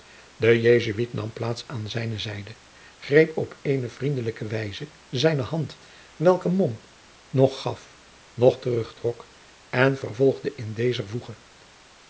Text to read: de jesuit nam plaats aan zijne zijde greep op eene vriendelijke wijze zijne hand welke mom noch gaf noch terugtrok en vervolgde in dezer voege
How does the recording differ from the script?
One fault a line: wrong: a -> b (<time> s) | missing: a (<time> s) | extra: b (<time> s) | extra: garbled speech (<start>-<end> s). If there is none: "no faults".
no faults